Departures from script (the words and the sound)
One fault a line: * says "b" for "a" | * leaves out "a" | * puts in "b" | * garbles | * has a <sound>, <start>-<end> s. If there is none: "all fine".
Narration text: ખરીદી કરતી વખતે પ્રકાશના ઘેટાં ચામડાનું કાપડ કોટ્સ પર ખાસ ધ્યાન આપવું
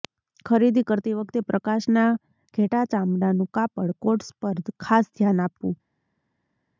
all fine